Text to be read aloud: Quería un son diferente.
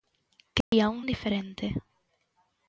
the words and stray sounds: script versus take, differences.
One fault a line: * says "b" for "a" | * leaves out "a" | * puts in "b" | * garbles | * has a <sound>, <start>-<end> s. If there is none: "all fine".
* has a dropout, 0.6-0.7 s
* leaves out "son"